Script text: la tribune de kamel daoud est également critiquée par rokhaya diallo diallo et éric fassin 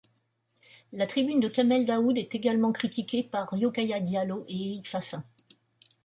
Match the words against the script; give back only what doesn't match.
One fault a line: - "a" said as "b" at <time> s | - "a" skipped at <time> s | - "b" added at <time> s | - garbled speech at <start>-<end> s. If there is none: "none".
- "diallo" skipped at 4.5 s